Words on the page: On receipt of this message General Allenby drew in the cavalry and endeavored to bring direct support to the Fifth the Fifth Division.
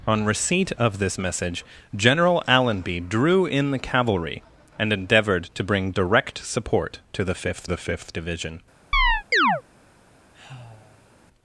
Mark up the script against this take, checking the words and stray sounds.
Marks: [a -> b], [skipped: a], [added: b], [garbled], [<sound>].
On receipt of this message General Allenby drew in the cavalry and endeavored to bring direct support to the Fifth the Fifth Division. [chirp] [sigh]